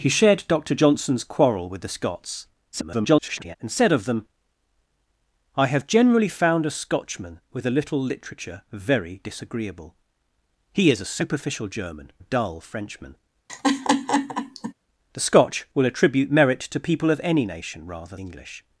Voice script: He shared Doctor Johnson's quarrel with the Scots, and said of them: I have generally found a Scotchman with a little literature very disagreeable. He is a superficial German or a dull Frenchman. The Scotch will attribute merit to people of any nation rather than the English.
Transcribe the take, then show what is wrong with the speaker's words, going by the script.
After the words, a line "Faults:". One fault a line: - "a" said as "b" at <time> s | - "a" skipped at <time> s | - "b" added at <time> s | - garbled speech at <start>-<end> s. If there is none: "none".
He shared Doctor Johnson's quarrel with the Scots, [garbled] and said of them: I have generally found a Scotchman with a little literature very disagreeable. He is a superficial German a dull Frenchman. The Scotch will attribute merit to people of any nation rather English.
Faults:
- garbled speech at 2.7-3.6 s
- "or" skipped at 12.1 s
- "than the" skipped at 18.2 s